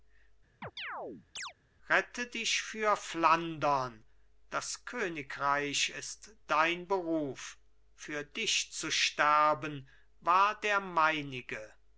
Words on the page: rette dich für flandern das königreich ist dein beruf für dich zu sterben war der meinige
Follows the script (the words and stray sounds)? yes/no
no